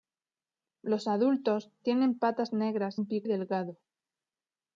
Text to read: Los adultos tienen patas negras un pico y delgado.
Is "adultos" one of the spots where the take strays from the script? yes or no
no